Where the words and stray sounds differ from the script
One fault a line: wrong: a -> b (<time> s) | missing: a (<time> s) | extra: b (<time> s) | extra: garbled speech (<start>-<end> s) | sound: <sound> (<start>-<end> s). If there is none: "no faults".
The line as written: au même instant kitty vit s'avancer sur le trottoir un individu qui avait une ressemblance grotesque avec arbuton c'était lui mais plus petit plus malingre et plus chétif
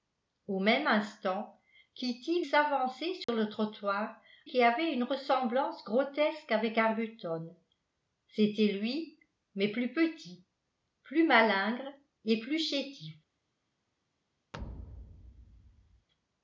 missing: vit (2.4 s)
sound: dropout (3.2-3.3 s)
missing: un individu (4.2 s)
sound: thud (14.5-16.1 s)